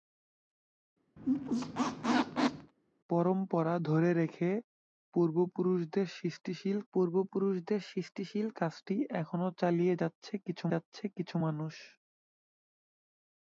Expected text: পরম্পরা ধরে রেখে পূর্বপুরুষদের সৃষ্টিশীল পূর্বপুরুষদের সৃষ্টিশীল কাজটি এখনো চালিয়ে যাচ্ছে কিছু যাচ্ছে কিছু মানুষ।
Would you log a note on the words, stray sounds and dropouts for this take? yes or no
yes